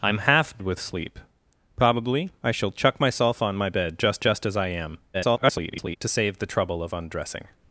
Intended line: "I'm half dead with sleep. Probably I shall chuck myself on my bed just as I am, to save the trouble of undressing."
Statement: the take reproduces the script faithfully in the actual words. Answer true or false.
false